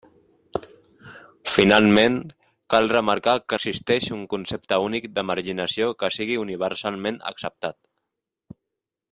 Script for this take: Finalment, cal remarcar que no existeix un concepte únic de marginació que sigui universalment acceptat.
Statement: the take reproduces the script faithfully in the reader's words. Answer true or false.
false